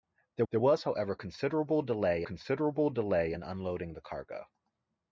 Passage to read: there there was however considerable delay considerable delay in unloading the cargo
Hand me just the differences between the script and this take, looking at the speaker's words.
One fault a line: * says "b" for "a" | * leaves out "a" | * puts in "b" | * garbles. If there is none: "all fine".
all fine